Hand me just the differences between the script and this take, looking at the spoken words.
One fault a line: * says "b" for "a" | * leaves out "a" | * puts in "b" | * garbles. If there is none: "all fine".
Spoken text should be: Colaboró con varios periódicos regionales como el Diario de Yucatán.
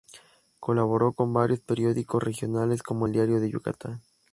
all fine